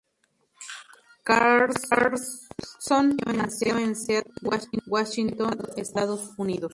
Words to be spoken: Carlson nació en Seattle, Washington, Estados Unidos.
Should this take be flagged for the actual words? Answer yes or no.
no